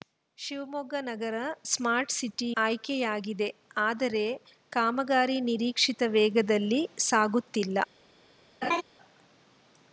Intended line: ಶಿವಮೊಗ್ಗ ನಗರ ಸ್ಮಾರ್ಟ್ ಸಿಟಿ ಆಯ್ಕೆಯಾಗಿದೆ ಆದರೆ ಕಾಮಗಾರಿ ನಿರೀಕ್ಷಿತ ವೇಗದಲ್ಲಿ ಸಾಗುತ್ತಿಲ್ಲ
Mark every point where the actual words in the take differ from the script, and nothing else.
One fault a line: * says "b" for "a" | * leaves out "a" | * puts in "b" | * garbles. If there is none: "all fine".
all fine